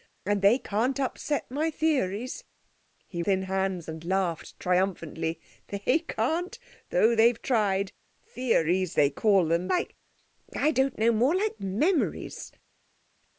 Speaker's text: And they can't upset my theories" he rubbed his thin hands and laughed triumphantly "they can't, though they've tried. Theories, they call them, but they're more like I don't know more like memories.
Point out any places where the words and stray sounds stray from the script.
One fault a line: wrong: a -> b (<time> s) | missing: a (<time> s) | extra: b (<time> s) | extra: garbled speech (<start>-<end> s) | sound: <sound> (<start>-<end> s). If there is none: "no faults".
missing: rubbed his (3.2 s)
missing: but they're more (9.7 s)